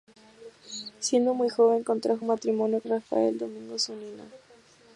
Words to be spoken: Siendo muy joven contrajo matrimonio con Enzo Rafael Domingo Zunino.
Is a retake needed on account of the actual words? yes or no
yes